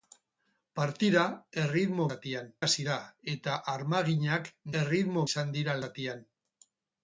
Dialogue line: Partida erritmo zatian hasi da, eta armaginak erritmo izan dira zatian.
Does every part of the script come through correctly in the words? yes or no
yes